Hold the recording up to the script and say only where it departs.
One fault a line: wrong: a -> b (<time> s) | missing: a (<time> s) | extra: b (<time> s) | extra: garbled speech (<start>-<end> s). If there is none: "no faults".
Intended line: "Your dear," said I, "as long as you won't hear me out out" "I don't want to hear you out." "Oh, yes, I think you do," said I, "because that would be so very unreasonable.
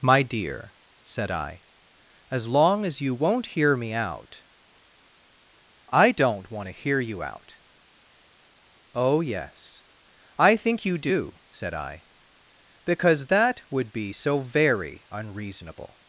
wrong: Your -> My (0.0 s)
missing: out (4.4 s)